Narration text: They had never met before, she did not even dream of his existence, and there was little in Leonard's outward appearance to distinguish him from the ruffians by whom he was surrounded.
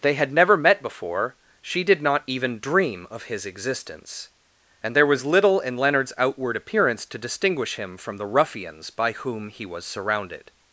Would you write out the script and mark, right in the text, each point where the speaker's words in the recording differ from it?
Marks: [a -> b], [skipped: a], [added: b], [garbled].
They had never met before, she did not even dream of his existence, and there was little in Leonard's outward appearance to distinguish him from the ruffians by whom he was surrounded.